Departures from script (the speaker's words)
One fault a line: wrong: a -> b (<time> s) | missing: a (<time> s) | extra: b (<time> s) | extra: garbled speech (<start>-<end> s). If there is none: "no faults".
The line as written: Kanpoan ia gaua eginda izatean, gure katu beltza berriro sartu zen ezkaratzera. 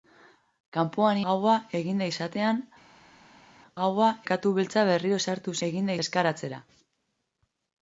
missing: ia (1.2 s)
wrong: gure -> gaua (3.8 s)
wrong: zen -> eginda (5.7 s)